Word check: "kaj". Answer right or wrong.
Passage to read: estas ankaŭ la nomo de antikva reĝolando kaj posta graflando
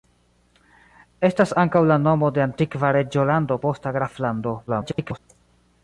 wrong